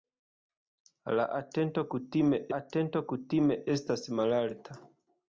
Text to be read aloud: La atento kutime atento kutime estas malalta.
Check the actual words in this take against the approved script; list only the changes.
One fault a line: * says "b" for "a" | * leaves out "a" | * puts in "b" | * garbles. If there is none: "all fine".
all fine